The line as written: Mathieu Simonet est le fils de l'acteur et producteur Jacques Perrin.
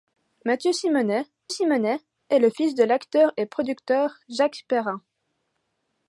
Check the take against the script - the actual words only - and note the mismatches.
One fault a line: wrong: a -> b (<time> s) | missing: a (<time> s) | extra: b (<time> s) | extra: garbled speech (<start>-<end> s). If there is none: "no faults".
extra: Simonet (1.5 s)